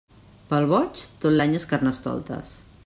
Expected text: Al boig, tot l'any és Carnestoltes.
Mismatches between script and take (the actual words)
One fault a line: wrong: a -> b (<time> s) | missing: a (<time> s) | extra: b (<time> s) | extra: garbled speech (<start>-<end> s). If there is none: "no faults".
wrong: Al -> Pel (0.5 s)